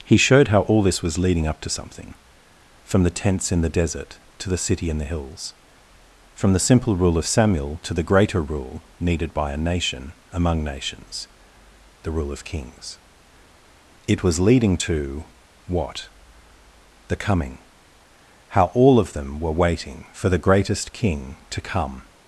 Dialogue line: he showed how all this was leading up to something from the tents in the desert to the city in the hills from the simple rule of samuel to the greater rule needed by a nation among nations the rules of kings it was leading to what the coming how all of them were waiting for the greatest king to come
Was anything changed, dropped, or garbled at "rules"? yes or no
yes